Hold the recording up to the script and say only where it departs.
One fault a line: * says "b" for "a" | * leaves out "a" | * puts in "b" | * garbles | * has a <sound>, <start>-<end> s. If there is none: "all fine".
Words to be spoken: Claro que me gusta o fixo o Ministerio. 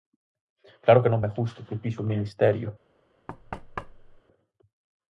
* puts in "non"
* puts in "que"
* has a thud, 3.3-4.2 s